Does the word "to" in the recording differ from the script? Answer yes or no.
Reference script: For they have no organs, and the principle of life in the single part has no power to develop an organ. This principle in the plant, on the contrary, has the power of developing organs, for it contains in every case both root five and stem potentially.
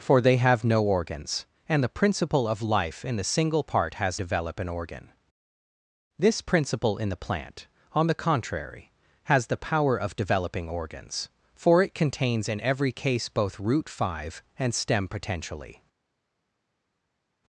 yes